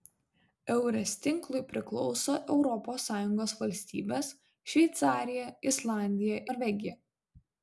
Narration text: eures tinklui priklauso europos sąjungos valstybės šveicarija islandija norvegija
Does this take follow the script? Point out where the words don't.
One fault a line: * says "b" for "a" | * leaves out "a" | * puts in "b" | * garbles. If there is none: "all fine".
all fine